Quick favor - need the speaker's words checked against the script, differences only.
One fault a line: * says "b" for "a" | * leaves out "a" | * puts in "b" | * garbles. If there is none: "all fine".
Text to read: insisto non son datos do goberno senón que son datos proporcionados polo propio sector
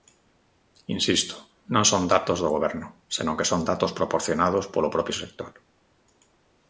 all fine